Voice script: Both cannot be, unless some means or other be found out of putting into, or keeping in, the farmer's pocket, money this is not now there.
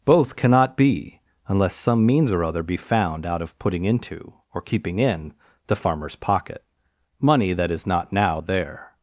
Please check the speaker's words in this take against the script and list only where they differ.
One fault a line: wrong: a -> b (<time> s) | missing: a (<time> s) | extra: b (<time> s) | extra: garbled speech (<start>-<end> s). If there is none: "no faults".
wrong: this -> that (7.5 s)